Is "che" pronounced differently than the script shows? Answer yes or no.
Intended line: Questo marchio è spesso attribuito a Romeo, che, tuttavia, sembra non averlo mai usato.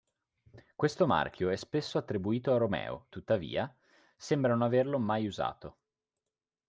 yes